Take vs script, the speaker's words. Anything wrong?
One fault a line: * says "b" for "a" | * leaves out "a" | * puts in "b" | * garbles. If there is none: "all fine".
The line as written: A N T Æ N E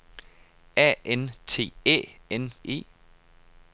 all fine